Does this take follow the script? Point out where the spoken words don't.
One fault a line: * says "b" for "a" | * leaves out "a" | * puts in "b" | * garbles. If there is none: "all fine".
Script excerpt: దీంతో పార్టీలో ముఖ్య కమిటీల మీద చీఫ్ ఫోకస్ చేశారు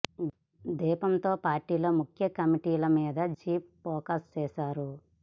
all fine